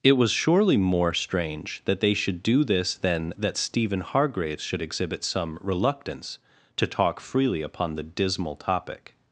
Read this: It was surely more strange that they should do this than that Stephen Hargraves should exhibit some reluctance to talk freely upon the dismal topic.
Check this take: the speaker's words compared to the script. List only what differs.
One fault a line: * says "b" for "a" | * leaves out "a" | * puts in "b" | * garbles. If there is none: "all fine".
all fine